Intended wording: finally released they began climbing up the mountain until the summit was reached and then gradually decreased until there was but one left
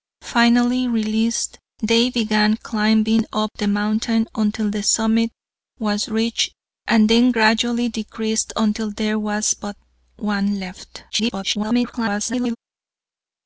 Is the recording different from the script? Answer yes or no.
yes